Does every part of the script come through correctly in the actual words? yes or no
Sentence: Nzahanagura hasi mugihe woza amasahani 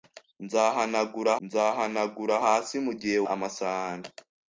no